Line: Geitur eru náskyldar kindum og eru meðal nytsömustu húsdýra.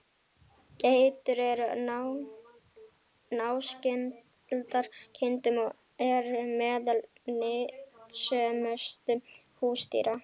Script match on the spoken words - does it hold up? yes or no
yes